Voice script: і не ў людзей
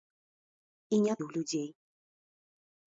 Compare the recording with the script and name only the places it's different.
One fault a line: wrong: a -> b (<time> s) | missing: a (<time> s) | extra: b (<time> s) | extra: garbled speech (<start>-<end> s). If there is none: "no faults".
no faults